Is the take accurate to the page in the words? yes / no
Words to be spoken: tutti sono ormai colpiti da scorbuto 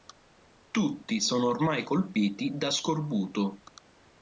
yes